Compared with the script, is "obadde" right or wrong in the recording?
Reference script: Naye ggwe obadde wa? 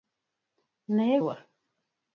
wrong